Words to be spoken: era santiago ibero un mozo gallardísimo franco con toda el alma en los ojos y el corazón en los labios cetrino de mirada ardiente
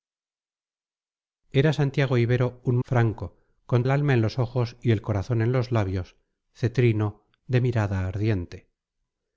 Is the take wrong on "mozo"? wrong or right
wrong